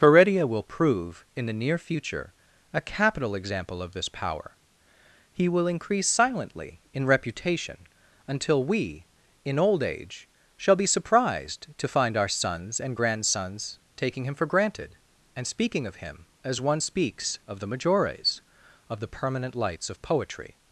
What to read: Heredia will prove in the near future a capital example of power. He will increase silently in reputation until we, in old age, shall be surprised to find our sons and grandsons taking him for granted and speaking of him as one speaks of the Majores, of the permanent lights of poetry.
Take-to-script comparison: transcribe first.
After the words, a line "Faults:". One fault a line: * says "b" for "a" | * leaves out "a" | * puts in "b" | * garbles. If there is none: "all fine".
Heredia will prove in the near future a capital example of this power. He will increase silently in reputation until we, in old age, shall be surprised to find our sons and grandsons taking him for granted and speaking of him as one speaks of the Majores, of the permanent lights of poetry.
Faults:
* puts in "this"